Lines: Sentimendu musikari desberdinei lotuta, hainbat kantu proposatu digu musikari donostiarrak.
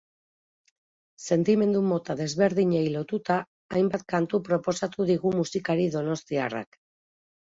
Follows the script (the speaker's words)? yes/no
no